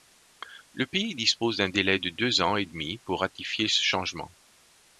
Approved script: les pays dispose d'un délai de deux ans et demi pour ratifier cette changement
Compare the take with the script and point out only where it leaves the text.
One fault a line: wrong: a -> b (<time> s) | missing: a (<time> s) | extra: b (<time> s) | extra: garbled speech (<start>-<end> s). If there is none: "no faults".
wrong: les -> le (0.7 s)
wrong: cette -> ce (3.7 s)